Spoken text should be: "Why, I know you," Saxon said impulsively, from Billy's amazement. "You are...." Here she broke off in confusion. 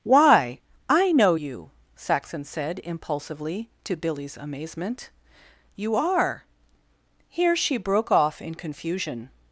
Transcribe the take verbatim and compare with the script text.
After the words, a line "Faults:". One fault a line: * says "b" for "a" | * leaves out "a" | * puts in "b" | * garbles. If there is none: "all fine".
"Why, I know you," Saxon said impulsively, to Billy's amazement. "You are...." Here she broke off in confusion.
Faults:
* says "to" for "from"